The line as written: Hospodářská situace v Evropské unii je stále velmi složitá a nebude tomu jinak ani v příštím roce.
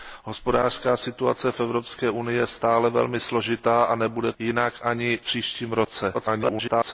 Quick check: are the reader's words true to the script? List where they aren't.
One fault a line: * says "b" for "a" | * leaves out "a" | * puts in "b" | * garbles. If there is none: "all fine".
* leaves out "tomu"
* leaves out "v"
* garbles